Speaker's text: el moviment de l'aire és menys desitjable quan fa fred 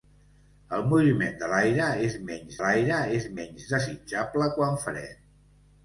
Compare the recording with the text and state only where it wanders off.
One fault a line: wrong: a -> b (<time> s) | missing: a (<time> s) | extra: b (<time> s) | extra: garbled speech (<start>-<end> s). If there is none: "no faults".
extra: l'aire és menys (2.6 s)
missing: fa (4.8 s)